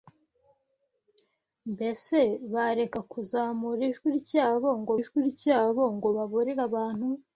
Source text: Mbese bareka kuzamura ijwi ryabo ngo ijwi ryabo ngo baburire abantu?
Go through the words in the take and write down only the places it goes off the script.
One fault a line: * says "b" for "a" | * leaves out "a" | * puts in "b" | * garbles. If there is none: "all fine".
all fine